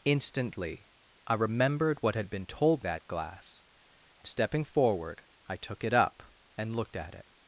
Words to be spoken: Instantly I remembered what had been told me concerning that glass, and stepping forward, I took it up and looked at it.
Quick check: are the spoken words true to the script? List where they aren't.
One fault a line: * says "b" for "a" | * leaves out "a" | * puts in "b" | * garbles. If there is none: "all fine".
* leaves out "me concerning"
* leaves out "and"